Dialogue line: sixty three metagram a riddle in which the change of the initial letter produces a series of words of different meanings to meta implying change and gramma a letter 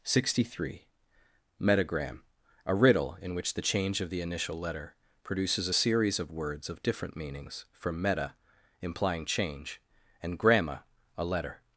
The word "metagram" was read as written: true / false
true